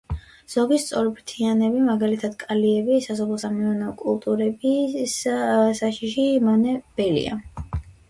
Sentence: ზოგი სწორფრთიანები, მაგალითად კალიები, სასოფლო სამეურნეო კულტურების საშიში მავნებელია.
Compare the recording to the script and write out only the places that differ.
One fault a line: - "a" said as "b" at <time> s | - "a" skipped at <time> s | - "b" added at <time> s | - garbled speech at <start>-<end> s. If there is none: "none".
none